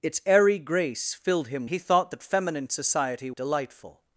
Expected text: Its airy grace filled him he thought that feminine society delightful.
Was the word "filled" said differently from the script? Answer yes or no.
no